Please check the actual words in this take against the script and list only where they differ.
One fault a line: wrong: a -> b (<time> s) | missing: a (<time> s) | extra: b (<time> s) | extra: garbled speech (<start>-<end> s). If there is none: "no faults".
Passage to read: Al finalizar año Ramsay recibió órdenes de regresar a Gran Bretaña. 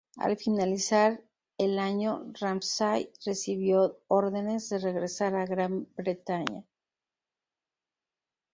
extra: el (1.6 s)